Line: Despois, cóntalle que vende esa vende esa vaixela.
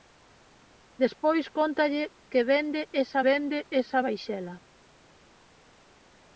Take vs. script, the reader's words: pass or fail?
pass